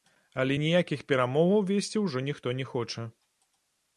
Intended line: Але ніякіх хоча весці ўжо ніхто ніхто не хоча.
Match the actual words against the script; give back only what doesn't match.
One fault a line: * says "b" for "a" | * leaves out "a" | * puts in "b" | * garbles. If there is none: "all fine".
* says "перамоваў" for "хоча"
* leaves out "ніхто"